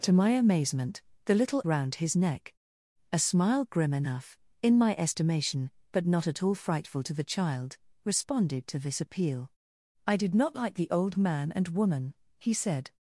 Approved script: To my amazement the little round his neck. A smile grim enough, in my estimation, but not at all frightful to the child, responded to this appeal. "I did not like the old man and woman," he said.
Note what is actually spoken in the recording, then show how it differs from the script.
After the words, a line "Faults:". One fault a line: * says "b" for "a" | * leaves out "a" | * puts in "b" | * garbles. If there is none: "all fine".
To my amazement the little round his neck. A smile grim enough, in my estimation, but not at all frightful to the child, responded to this appeal. "I did not like the old man and woman," he said.
Faults:
all fine